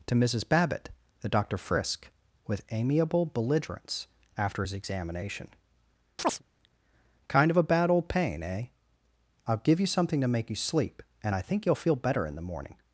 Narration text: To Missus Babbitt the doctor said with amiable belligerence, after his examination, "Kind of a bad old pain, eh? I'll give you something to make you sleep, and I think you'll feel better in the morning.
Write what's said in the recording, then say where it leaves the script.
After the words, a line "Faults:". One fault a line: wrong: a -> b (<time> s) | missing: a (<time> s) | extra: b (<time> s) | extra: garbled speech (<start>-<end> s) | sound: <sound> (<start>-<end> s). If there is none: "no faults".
To Missus Babbitt the doctor frisk with amiable belligerence, after his examination, "Kind of a bad old pain, eh? I'll give you something to make you sleep, and I think you'll feel better in the morning.
Faults:
wrong: said -> frisk (1.6 s)
sound: chirp (6.2-6.4 s)